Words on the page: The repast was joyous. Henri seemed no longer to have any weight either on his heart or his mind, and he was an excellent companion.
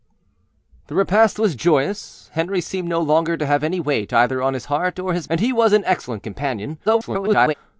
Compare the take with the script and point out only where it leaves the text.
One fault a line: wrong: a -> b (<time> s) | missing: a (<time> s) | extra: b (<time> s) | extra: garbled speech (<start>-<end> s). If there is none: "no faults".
missing: mind (5.3 s)
extra: garbled speech (6.9-7.5 s)